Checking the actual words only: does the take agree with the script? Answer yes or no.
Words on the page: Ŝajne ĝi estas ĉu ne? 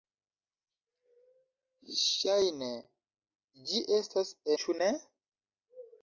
yes